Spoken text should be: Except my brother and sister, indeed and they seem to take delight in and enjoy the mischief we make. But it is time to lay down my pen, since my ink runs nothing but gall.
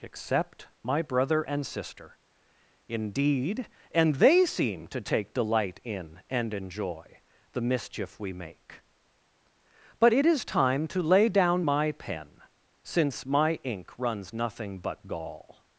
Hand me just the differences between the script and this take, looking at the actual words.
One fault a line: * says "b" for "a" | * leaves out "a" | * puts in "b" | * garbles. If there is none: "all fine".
all fine